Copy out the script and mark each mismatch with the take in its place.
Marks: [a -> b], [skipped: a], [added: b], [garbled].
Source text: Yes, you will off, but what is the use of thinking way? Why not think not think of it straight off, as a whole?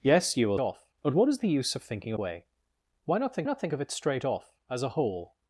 Yes, you will off, but what is the use of thinking way? Why not think not think of it straight off, as a whole?